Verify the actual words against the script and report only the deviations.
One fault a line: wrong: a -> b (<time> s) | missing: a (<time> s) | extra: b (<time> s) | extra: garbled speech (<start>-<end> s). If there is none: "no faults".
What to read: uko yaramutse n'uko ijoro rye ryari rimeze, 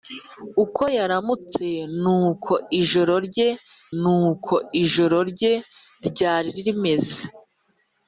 extra: n'uko ijoro rye (4.0 s)